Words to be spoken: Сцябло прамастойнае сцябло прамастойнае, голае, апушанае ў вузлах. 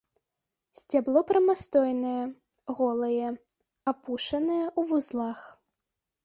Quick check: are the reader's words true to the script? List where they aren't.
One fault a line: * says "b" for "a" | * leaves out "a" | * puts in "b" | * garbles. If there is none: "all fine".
* leaves out "сцябло прамастойнае"